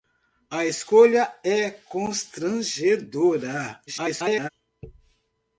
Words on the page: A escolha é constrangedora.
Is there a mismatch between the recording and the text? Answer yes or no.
yes